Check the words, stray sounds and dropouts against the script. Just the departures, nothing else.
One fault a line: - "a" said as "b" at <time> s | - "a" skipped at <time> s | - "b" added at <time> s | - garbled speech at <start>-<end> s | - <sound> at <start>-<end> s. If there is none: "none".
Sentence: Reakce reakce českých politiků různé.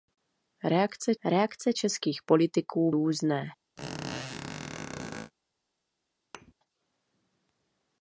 - squeak at 3.8-5.3 s
- thud at 6.3-6.5 s